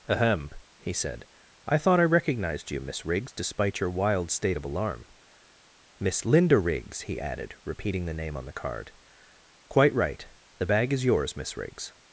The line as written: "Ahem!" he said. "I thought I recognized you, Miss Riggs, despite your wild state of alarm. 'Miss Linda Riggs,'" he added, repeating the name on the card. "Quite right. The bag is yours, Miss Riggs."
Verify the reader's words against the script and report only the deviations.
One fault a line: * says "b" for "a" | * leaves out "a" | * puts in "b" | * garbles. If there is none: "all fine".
all fine